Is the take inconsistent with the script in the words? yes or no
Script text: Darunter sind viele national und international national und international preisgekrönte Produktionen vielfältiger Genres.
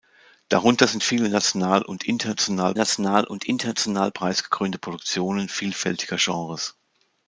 no